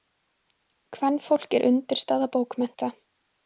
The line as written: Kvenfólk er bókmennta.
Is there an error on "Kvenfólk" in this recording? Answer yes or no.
no